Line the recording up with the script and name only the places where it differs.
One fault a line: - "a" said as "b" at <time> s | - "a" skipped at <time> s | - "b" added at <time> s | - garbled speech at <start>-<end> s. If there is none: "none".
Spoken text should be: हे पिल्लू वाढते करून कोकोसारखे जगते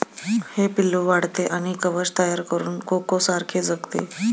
- "आणि कवच तयार" added at 1.5 s